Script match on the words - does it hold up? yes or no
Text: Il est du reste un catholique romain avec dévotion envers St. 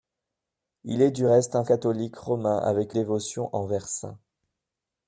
yes